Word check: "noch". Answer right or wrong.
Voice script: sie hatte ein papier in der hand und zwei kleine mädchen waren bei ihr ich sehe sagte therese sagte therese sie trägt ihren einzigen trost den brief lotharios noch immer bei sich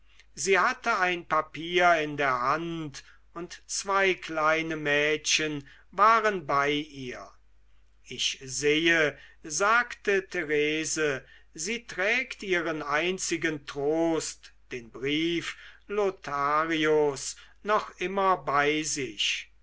right